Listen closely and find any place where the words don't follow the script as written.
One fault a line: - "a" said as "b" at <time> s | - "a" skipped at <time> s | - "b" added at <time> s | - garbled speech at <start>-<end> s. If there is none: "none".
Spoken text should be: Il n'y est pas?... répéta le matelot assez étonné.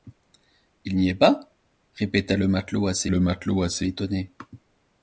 - "le matelot assez" added at 3.1 s